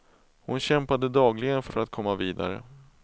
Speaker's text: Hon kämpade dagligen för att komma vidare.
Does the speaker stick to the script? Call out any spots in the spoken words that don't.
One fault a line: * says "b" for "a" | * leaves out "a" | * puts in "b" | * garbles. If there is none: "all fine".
* puts in "för"